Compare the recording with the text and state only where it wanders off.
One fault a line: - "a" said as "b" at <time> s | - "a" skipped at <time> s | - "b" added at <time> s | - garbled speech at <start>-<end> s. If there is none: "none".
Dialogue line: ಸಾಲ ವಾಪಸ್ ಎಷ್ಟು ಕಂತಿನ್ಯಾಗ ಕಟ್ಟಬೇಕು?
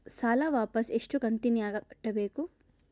none